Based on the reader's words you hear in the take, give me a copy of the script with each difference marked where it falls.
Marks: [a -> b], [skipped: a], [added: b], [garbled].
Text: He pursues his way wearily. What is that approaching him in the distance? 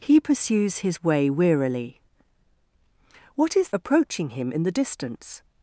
He pursues his way wearily. What is [skipped: that] approaching him in the distance?